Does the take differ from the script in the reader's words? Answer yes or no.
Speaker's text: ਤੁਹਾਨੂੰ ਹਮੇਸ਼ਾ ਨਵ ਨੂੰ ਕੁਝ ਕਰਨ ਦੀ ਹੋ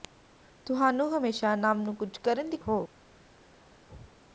no